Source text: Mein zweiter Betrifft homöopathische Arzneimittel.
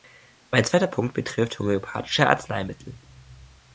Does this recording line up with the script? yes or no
no